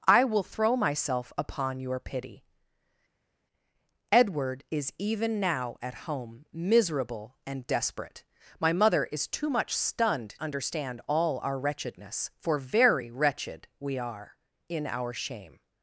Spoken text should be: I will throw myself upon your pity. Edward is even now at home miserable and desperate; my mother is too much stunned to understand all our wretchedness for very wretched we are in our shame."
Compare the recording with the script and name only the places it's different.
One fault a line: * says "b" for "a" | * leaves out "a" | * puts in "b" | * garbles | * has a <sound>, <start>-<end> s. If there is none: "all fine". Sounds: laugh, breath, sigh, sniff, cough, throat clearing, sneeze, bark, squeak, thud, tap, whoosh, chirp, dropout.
* leaves out "to"